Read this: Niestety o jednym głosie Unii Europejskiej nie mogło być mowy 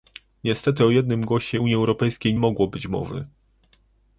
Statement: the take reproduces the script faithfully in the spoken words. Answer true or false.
false